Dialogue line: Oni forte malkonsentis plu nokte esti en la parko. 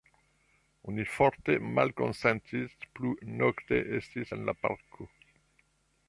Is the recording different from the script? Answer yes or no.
no